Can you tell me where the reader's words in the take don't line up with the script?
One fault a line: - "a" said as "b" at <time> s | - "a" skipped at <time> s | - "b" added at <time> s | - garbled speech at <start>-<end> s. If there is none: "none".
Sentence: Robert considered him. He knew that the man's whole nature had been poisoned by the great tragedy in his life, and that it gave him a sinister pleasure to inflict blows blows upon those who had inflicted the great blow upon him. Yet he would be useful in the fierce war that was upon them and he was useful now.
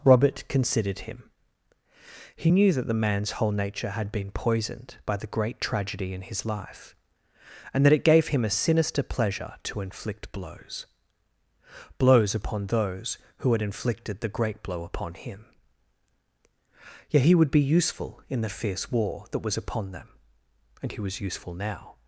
none